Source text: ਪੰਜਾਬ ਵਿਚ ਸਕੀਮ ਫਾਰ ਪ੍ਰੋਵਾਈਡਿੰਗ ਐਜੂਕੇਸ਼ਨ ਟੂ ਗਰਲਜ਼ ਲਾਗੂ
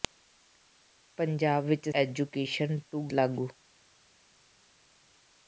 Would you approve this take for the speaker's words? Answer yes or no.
no